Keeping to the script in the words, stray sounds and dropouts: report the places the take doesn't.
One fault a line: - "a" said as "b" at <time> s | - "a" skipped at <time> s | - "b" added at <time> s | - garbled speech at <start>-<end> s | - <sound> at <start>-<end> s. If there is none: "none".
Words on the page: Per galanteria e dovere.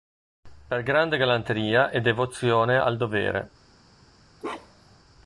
- "grande" added at 0.8 s
- "devozione al" added at 2.0 s
- bark at 4.4-5.0 s